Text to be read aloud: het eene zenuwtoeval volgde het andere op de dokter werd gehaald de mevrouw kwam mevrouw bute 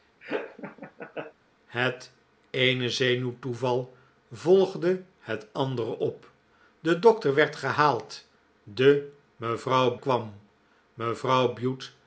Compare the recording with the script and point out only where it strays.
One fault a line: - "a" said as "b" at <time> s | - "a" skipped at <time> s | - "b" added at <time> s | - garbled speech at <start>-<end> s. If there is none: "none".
none